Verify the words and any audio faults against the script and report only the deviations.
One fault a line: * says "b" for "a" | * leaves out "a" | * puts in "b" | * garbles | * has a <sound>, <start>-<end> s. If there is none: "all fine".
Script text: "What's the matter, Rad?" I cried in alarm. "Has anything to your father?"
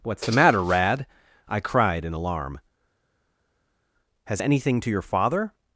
all fine